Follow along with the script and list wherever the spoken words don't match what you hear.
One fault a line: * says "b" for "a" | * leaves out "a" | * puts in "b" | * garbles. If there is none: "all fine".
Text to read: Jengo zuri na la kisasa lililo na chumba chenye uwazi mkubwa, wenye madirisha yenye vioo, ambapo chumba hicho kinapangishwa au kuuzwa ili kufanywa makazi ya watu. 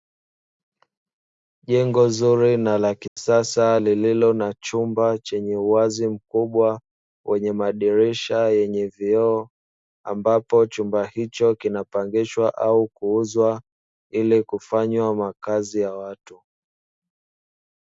all fine